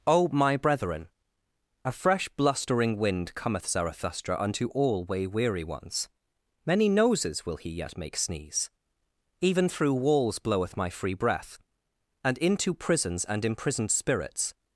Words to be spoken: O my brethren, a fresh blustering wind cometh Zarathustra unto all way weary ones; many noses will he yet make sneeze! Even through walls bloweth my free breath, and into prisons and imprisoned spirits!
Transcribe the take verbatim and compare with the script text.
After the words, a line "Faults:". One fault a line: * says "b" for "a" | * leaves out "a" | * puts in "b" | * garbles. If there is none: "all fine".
O my brethren, a fresh blustering wind cometh Zarathustra unto all way weary ones; many noses will he yet make sneeze! Even through walls bloweth my free breath, and into prisons and imprisoned spirits!
Faults:
all fine